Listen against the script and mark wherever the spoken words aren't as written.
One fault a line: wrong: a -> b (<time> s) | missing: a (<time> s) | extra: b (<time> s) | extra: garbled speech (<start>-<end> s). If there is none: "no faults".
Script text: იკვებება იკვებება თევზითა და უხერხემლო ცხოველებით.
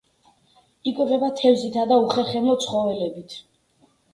missing: იკვებება (1.3 s)